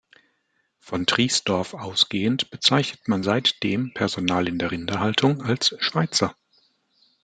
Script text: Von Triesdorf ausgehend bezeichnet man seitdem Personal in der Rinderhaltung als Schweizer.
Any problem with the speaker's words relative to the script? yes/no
no